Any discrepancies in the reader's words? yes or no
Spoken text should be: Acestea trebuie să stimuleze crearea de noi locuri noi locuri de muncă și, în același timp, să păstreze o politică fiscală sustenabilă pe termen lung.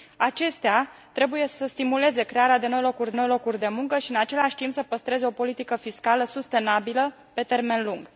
no